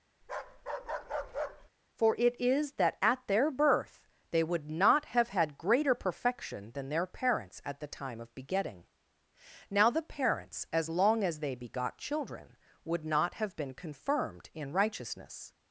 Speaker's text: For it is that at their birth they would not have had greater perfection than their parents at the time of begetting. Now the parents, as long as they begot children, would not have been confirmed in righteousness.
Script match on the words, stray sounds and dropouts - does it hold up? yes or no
no